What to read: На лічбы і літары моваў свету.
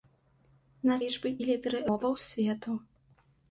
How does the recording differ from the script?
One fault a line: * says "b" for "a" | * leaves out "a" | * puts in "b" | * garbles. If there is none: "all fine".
all fine